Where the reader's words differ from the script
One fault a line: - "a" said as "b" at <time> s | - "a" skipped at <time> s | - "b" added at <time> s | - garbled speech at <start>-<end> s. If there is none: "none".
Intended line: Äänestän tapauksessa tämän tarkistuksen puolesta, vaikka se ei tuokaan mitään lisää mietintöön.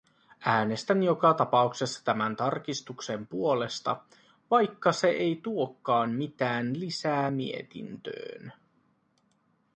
- "joka" added at 1.0 s